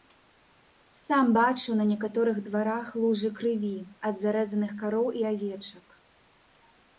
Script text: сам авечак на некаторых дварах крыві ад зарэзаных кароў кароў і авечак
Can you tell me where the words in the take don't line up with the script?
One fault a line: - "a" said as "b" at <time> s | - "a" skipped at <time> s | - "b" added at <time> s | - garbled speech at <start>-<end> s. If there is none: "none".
- "авечак" said as "бачыў" at 1.4 s
- "лужы" added at 3.0 s
- "кароў" skipped at 5.1 s